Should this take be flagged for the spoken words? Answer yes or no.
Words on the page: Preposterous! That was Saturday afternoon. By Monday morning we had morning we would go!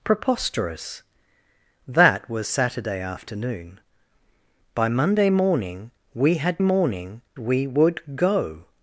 no